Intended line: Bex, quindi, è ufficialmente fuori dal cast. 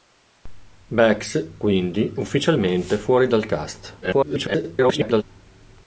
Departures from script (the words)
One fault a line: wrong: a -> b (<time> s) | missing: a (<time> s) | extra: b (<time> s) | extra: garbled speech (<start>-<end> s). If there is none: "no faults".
missing: è (2.1 s)
extra: garbled speech (4.0-5.2 s)